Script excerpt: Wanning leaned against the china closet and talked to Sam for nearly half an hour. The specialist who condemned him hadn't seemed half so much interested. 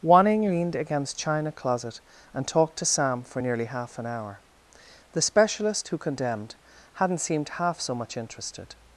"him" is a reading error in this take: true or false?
true